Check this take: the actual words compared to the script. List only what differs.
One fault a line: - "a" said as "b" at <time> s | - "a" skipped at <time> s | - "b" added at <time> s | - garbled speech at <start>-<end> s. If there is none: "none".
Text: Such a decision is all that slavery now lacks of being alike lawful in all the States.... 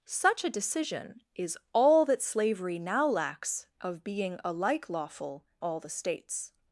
- "in" skipped at 5.5 s